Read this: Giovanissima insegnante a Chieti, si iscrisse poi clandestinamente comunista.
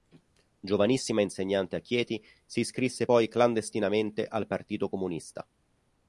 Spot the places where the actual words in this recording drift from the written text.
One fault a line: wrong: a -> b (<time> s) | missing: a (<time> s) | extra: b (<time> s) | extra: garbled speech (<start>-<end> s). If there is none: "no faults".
extra: al Partito (4.2 s)